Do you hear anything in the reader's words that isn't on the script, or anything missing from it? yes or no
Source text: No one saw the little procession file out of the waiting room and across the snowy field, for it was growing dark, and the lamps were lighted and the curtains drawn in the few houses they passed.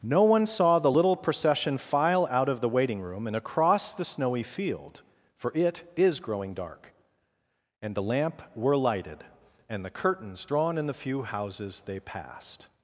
yes